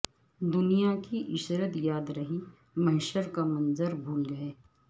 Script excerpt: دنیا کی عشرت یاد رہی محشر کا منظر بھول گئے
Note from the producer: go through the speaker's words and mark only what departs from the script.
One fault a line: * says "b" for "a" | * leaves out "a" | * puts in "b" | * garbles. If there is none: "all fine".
all fine